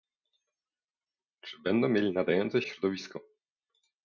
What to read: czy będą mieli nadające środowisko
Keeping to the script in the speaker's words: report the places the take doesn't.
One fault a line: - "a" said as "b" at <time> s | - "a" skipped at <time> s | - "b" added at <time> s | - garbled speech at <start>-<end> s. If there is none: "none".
none